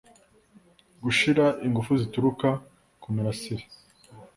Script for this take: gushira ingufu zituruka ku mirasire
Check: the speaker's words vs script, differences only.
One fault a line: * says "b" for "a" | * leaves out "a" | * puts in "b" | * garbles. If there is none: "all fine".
all fine